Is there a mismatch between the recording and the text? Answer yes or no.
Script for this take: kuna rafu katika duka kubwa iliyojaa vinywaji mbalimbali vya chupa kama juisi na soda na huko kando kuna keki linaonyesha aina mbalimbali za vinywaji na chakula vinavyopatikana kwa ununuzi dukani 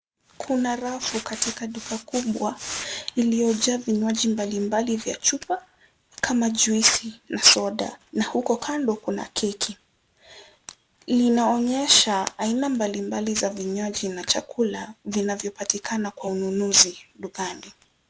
no